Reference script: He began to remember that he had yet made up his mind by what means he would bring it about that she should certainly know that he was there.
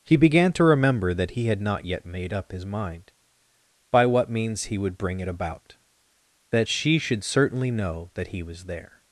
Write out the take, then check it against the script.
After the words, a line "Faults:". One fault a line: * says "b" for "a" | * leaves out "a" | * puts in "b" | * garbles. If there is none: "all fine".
He began to remember that he had not yet made up his mind by what means he would bring it about that she should certainly know that he was there.
Faults:
* puts in "not"